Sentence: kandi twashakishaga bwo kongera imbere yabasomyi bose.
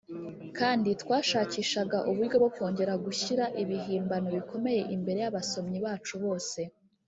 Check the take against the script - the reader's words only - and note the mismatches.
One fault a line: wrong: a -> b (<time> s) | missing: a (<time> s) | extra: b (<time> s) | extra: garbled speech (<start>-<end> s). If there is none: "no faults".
extra: uburyo (2.1 s)
extra: gushyira ibihimbano bikomeye (3.0 s)
extra: bacu (5.8 s)